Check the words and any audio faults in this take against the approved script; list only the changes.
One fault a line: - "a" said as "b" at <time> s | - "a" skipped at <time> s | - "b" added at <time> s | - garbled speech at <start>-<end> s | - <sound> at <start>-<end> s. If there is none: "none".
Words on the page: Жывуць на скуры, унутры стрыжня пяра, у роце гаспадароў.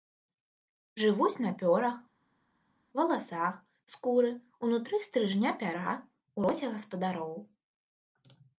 - "пёрах валасах" added at 1.6 s